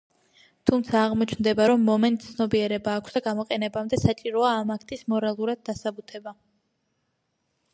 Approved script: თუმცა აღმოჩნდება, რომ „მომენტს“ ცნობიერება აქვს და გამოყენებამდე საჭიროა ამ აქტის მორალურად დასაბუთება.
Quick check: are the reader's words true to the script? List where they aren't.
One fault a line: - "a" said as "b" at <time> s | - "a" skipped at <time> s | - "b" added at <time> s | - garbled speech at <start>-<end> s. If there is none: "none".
none